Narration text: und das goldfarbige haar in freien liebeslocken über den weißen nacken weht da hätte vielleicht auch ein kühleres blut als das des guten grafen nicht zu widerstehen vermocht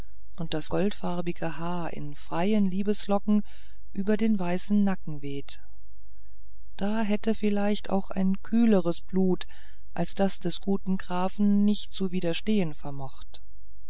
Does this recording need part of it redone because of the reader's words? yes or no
no